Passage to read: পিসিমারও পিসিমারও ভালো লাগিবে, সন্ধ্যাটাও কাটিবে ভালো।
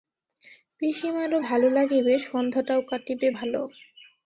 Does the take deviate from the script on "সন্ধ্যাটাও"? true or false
false